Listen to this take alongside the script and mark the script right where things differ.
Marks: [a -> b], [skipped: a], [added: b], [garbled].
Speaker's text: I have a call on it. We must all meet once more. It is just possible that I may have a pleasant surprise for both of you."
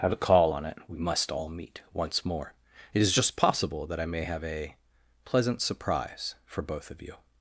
I have a call on it. We must all meet once more. It is just possible that I may have a pleasant surprise for both of you."